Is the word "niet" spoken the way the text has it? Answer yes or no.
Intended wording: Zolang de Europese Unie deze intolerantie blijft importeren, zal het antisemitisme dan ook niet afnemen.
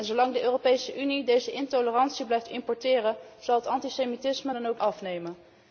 no